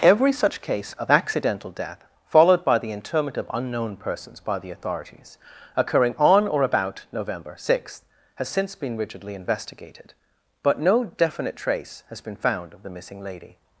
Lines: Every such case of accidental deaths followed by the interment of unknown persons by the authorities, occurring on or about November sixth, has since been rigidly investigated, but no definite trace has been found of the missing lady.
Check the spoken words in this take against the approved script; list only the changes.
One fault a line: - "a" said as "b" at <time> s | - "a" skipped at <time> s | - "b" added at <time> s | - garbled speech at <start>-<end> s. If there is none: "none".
- "deaths" said as "death" at 1.7 s